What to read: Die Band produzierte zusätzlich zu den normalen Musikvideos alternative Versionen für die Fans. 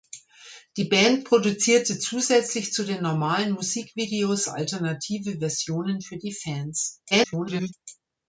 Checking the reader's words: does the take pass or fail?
fail